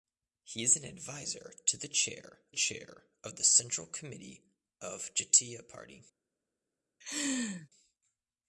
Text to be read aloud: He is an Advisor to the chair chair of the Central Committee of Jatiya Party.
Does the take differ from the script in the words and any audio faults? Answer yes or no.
yes